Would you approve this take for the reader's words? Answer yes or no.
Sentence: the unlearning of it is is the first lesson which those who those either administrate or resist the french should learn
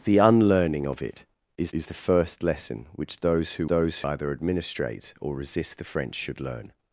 yes